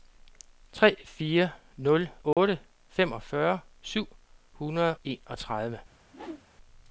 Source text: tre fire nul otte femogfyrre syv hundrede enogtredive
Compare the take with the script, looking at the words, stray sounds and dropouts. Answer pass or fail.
fail